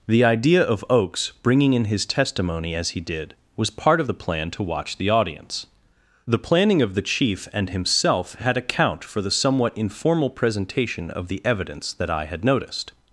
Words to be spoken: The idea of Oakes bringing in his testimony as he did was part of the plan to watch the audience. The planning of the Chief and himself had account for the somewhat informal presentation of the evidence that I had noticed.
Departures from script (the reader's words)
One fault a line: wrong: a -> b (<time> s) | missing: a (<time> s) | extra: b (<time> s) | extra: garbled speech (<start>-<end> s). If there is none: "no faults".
no faults